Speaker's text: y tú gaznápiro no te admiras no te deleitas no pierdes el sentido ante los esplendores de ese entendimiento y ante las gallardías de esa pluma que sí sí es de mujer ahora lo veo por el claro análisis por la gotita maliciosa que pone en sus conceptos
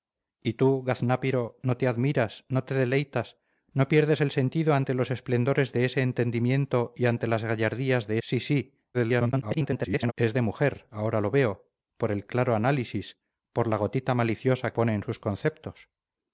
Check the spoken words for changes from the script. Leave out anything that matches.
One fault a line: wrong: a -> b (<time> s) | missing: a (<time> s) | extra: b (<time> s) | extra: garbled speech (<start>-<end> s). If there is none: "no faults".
missing: esa pluma que (8.2 s)
extra: garbled speech (8.9-10.1 s)
missing: que (14.7 s)